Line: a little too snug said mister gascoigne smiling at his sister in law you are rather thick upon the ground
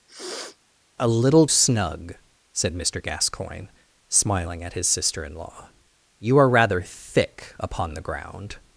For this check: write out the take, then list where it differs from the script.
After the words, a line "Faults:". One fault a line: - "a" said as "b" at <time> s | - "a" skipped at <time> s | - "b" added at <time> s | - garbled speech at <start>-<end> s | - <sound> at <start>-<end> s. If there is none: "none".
a little snug said mister gascoigne smiling at his sister in law you are rather thick upon the ground
Faults:
- sniff at 0.1-0.6 s
- "too" skipped at 1.5 s